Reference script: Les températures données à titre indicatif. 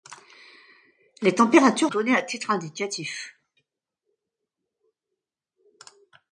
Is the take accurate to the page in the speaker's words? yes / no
yes